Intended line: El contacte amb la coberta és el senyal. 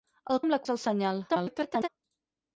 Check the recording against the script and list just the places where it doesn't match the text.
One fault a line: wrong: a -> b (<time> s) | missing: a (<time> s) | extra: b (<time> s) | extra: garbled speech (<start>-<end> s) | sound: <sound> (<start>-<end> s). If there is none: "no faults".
missing: contacte (0.4 s)
missing: coberta (0.6 s)
extra: garbled speech (1.3-1.9 s)